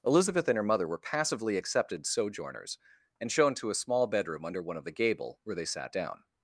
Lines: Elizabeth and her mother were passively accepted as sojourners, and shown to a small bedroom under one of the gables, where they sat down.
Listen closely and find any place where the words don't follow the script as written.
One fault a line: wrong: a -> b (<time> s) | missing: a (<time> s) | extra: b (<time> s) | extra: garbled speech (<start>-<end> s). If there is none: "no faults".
missing: as (2.0 s)
wrong: gables -> gable (4.9 s)